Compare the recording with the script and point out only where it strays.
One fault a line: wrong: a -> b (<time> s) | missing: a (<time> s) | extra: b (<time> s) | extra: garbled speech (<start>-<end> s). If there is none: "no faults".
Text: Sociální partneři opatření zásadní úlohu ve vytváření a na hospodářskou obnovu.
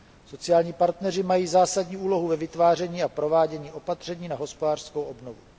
wrong: opatření -> mají (1.2 s)
extra: provádění opatření (3.1 s)